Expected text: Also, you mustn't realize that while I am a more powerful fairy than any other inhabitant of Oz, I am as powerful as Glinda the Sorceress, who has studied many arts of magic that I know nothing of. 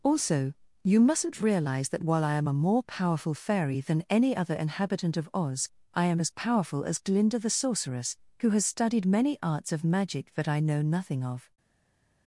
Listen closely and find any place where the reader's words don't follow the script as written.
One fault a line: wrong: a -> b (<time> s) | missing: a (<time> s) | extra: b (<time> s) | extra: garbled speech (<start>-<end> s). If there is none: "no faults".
no faults